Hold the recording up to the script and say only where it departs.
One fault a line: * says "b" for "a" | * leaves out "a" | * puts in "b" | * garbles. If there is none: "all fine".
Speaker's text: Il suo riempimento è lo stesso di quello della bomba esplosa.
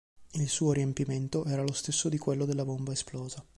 * says "era" for "è"